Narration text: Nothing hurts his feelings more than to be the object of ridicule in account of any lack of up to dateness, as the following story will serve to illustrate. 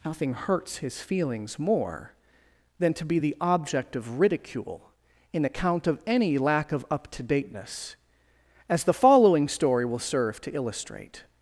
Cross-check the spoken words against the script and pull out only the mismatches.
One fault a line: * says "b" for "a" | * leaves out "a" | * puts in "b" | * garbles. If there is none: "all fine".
all fine